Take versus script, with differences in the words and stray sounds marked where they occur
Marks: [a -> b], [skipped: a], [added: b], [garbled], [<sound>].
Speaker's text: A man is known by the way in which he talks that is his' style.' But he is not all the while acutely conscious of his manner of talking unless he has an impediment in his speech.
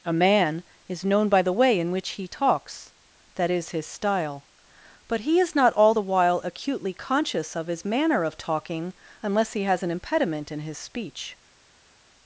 A man is known by the way in which he talks that is his' style.' But he is not all the while acutely conscious of his manner of talking unless he has an impediment in his speech.